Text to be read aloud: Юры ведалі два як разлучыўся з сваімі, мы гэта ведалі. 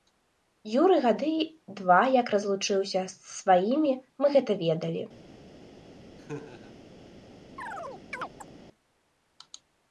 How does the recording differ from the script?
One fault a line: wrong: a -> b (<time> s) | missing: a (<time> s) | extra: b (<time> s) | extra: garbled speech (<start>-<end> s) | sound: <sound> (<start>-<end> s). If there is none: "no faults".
wrong: ведалі -> гады (1.0 s)
sound: laugh (6.2-6.8 s)
sound: chirp (7.6-8.5 s)